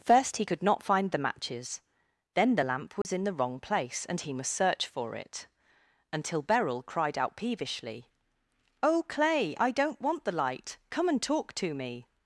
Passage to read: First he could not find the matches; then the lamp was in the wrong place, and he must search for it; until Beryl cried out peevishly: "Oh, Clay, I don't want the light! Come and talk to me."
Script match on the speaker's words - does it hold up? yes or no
yes